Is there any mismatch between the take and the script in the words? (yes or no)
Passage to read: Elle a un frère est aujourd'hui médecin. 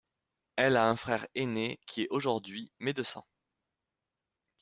yes